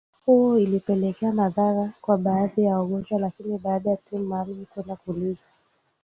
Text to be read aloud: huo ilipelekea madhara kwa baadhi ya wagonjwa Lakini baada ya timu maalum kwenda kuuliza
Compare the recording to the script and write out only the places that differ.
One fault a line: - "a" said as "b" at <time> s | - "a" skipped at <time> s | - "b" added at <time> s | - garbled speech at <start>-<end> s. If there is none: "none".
none